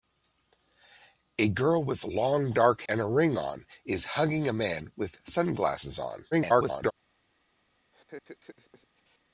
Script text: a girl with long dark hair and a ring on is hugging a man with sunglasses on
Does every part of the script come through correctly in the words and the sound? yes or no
no